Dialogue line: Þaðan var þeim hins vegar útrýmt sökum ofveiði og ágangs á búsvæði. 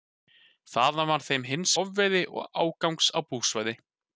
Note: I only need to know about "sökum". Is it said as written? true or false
false